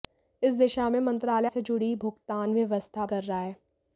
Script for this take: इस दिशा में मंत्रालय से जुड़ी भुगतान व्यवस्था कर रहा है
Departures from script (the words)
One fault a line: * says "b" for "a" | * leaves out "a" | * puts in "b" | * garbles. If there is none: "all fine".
all fine